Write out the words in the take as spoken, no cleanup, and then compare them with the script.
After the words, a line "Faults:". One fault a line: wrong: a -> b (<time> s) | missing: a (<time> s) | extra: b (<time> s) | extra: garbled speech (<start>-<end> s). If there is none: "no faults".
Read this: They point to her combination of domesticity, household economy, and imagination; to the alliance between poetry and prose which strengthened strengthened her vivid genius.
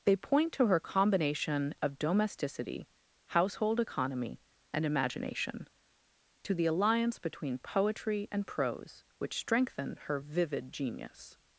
They point to her combination of domesticity, household economy, and imagination; to the alliance between poetry and prose which strengthened her vivid genius.
Faults:
missing: strengthened (10.0 s)